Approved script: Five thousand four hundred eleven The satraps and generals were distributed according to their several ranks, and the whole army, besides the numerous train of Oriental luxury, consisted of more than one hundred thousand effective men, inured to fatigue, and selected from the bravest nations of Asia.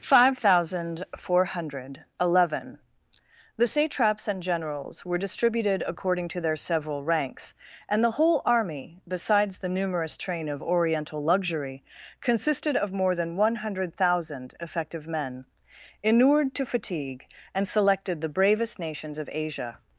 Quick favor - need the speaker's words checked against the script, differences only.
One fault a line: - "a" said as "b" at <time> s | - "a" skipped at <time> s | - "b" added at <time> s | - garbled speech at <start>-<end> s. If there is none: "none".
- "from" skipped at 18.2 s